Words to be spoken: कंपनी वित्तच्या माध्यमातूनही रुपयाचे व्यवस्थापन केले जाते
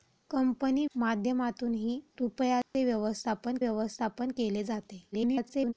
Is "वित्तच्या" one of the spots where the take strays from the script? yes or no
yes